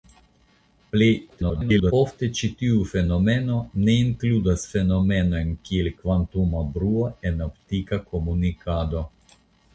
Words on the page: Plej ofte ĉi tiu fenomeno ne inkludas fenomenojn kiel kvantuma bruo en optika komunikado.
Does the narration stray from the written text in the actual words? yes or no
yes